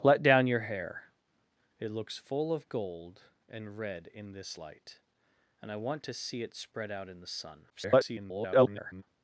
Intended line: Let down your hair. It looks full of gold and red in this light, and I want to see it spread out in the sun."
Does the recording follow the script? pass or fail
fail